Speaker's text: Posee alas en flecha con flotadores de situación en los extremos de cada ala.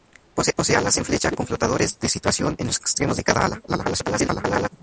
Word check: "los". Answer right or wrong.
right